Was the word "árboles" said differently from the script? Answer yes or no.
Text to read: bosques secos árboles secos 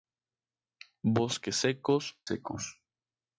yes